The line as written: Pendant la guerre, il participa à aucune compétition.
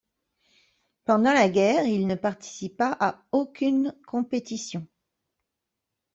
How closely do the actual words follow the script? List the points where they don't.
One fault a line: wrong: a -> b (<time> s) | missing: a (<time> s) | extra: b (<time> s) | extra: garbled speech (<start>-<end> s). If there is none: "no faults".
extra: ne (2.0 s)